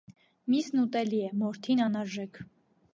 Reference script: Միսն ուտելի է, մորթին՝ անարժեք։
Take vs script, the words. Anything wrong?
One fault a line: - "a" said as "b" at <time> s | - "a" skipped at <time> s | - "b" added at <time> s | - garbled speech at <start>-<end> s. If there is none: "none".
none